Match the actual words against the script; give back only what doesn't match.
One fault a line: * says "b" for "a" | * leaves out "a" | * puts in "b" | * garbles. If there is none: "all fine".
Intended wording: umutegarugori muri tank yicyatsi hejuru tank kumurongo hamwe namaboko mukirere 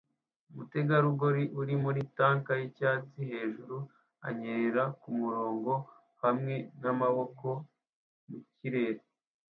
* puts in "uri"
* says "anyerera" for "tank"